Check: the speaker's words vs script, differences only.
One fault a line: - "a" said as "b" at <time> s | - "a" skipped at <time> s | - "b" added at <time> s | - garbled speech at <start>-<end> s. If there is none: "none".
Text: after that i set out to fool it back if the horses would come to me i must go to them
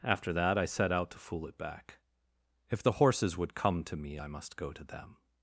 none